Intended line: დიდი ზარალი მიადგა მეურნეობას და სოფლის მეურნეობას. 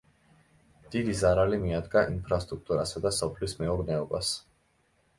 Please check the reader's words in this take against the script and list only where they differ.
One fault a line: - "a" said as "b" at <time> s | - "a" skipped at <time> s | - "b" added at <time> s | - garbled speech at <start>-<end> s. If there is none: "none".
- "მეურნეობას" said as "ინფრასტრუქტურასა" at 2.1 s